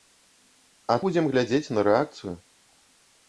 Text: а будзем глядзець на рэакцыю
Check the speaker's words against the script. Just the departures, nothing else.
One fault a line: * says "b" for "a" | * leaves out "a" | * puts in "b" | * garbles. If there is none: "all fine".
all fine